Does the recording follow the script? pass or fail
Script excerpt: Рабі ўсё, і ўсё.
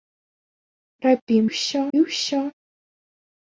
pass